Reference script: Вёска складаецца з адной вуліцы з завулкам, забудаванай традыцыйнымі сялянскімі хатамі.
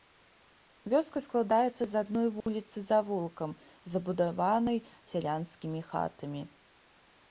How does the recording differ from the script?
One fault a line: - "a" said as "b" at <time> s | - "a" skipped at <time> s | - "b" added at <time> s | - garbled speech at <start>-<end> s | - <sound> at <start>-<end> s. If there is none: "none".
- dropout at 2.4-2.5 s
- "традыцыйнымі" skipped at 4.8 s